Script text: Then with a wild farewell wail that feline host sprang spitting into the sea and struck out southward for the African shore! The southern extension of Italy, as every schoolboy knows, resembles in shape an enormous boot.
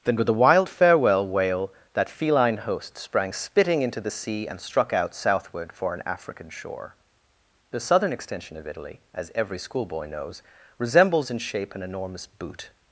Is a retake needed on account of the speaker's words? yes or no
yes